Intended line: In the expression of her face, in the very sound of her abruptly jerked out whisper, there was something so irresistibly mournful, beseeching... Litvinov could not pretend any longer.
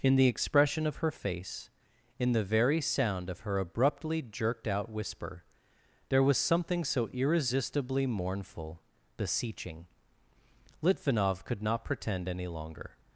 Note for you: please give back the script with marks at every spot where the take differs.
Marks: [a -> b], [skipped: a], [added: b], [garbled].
In the expression of her face, in the very sound of her abruptly jerked out whisper, there was something so irresistibly mournful, beseeching... Litvinov could not pretend any longer.